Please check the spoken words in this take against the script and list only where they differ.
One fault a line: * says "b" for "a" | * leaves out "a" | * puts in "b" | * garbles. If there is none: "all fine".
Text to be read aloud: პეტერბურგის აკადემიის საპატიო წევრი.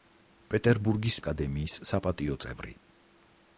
all fine